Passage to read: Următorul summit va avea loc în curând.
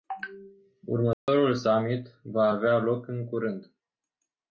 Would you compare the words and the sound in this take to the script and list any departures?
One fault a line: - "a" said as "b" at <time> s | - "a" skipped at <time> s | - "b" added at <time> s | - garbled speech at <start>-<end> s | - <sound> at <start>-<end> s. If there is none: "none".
- dropout at 1.1-1.3 s